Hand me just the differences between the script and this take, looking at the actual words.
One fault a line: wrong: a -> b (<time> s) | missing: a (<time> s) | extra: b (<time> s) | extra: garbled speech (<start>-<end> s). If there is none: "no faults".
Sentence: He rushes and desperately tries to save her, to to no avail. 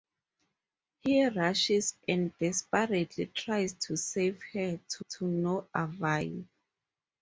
no faults